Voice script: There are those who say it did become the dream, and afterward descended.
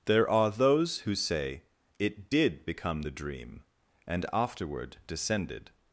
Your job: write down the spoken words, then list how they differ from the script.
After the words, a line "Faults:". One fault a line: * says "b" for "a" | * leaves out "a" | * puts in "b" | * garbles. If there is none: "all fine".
There are those who say it did become the dream, and afterward descended.
Faults:
all fine